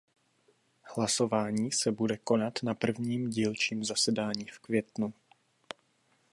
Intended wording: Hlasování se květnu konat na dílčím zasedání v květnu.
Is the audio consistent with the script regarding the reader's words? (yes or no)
no